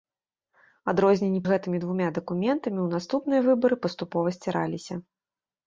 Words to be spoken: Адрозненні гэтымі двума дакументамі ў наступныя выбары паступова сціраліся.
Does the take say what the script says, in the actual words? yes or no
yes